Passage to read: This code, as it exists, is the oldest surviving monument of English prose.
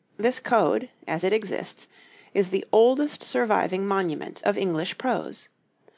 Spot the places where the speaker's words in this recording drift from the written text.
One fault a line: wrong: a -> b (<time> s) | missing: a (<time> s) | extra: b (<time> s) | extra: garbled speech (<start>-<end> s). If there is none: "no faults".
no faults